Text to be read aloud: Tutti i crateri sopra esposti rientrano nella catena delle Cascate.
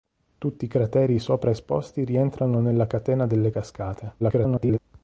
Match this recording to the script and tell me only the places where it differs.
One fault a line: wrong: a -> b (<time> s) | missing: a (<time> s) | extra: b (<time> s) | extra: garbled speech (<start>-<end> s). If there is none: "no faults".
extra: garbled speech (4.2-4.8 s)